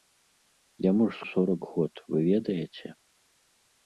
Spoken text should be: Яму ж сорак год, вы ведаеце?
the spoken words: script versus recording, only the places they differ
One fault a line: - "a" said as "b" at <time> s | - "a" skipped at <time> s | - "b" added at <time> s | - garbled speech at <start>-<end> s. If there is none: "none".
none